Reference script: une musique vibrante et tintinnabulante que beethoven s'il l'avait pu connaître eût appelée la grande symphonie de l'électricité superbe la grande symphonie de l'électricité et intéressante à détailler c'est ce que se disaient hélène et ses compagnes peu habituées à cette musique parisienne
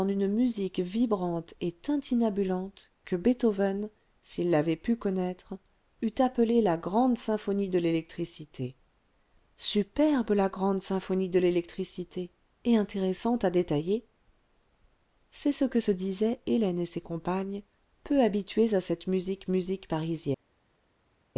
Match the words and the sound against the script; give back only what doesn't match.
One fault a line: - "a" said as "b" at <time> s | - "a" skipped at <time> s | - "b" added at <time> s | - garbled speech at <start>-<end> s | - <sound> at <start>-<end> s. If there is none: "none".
- "musique" added at 19.5 s